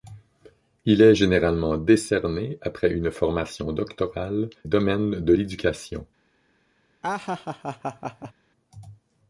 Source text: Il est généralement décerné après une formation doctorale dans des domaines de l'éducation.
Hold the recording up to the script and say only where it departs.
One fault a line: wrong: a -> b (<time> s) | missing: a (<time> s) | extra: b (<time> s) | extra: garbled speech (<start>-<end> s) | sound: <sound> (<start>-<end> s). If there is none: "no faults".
missing: dans des (4.5 s)
sound: laugh (7.0-8.3 s)